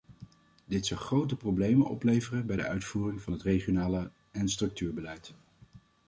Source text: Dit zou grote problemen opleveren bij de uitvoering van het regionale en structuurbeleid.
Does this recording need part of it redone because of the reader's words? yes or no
no